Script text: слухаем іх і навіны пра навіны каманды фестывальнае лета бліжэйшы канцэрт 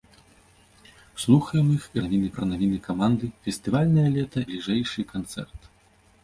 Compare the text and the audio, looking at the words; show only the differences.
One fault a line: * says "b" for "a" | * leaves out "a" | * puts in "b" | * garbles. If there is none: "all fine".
all fine